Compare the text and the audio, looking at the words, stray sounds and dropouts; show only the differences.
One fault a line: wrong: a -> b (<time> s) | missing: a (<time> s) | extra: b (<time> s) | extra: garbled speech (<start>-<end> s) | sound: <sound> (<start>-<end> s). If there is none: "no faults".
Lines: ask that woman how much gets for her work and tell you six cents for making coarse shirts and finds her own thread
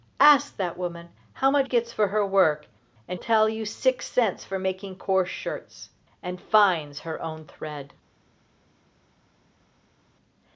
no faults